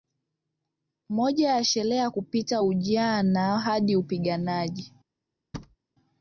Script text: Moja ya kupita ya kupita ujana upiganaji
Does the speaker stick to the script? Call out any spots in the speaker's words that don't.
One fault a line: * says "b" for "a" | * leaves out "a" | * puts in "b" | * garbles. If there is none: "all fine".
* says "sherehe" for "kupita"
* puts in "hadi"